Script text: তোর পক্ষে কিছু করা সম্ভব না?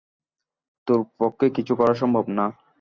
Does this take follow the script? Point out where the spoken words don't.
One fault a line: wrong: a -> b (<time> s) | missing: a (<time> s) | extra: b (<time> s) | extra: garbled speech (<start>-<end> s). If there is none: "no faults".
no faults